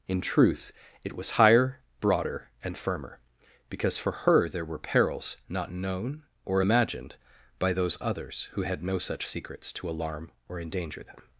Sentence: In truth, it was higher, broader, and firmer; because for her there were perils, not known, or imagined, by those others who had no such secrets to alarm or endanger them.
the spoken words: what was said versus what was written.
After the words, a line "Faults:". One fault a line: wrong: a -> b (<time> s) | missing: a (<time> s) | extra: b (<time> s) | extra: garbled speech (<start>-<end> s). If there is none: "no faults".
In truth, it was higher, broader, and firmer; because for her there were perils, not known, or imagined, by those others who had no such secrets to alarm or endanger them.
Faults:
no faults